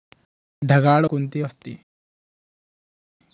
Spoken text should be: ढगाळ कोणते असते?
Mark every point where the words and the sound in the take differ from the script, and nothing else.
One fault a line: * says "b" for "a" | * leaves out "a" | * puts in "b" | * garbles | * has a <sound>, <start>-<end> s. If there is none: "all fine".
all fine